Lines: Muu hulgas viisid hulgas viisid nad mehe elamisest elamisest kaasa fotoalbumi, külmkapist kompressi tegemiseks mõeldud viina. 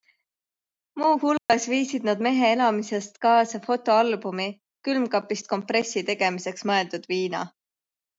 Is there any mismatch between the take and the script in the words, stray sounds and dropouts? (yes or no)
yes